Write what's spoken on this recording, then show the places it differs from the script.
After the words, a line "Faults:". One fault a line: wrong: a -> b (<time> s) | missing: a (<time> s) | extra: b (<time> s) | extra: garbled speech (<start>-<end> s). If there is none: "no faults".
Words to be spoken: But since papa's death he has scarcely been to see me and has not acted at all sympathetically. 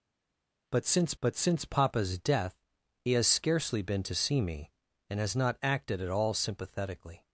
But since but since papa's death he has scarcely been to see me and has not acted at all sympathetically.
Faults:
extra: but since (1.2 s)